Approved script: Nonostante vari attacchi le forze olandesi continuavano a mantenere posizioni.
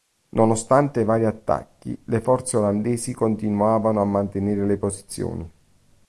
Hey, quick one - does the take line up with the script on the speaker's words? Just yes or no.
no